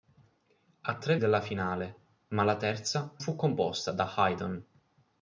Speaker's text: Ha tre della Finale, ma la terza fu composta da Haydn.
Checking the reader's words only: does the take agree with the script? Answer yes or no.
yes